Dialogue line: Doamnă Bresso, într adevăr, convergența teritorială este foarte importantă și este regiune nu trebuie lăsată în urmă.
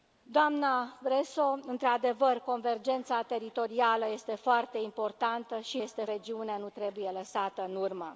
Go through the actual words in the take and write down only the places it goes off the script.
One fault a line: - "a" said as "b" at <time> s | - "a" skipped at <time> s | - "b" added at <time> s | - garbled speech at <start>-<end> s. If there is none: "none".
none